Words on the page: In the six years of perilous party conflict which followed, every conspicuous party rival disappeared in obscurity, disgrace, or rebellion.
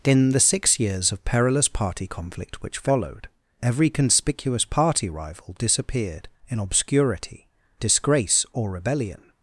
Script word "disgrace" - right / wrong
right